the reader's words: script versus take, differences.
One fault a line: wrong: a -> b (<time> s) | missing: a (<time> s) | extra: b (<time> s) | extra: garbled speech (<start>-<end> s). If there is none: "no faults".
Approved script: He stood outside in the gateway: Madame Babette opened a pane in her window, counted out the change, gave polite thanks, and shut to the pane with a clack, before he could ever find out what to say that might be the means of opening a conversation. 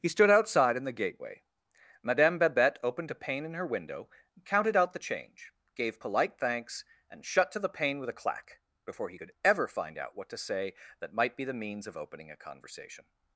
no faults